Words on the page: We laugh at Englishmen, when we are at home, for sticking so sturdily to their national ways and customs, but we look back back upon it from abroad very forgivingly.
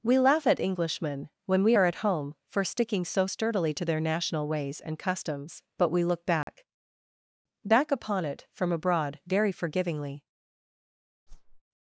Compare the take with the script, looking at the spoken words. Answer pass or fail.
pass